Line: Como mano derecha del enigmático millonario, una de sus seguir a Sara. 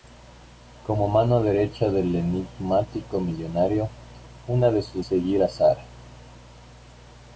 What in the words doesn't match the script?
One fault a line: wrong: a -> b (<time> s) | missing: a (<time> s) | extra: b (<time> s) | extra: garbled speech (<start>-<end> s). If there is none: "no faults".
no faults